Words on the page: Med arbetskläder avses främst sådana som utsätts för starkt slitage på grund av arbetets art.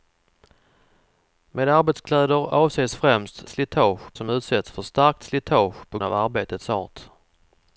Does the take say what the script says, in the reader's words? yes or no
no